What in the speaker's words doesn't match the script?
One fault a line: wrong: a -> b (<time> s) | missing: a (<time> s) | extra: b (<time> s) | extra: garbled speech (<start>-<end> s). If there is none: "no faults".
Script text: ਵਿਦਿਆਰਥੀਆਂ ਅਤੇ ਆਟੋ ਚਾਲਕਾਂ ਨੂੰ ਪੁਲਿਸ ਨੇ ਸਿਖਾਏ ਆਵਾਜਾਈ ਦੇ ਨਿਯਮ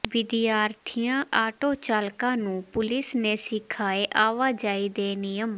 missing: ਅਤੇ (1.2 s)